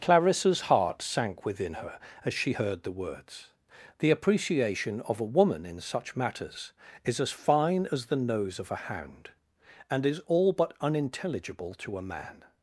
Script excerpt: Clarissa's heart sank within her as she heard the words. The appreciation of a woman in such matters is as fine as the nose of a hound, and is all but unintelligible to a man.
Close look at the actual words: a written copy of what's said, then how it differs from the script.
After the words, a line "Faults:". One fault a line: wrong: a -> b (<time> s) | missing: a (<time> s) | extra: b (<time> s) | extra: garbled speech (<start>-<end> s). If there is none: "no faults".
Clarissa's heart sank within her as she heard the words. The appreciation of a woman in such matters is as fine as the nose of a hound, and is all but unintelligible to a man.
Faults:
no faults